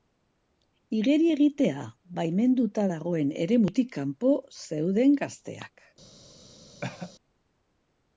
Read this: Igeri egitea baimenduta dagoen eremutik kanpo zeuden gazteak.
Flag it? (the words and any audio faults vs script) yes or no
yes